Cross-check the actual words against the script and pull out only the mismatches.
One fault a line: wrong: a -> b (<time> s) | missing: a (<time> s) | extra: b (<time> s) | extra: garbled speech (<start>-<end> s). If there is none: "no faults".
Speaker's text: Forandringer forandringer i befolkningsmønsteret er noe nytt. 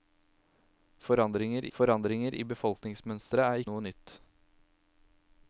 no faults